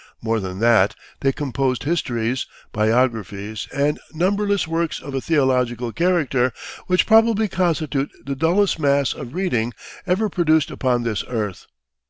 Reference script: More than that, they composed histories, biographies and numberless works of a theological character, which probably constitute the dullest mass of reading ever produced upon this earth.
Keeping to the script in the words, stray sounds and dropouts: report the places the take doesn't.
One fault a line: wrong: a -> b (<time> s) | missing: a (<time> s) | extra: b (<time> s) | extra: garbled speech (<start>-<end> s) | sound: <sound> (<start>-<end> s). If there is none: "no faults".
no faults